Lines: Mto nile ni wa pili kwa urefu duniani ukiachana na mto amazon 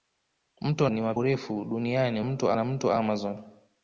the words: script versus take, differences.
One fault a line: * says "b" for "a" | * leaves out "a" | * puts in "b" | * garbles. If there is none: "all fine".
* leaves out "nile"
* leaves out "pili kwa"
* says "mto" for "ukiachana"